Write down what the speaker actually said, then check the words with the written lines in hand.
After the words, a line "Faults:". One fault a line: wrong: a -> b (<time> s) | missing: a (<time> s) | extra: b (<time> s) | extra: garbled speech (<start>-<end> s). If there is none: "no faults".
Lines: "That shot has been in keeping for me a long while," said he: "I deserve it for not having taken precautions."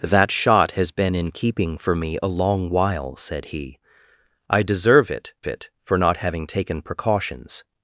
"That shot has been in keeping for me a long while," said he: "I deserve it it for not having taken precautions."
Faults:
extra: it (5.5 s)